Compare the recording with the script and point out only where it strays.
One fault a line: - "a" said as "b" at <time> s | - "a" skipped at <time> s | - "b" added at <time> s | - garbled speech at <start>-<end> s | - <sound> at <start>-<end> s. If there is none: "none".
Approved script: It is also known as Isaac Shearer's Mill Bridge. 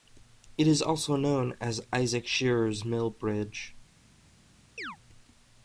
- chirp at 4.8-5.0 s